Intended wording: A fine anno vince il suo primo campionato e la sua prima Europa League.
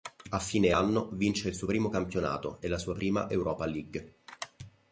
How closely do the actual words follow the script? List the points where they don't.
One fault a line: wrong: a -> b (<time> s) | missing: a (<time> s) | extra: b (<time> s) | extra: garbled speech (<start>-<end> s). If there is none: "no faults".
no faults